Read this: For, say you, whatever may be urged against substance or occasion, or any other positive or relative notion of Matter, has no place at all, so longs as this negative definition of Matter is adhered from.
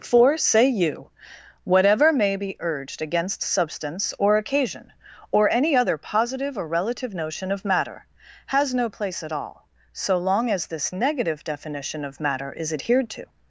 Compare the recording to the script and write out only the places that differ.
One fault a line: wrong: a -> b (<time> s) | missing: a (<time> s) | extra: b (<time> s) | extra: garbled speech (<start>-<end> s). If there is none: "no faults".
wrong: longs -> long (10.2 s)
wrong: from -> to (13.1 s)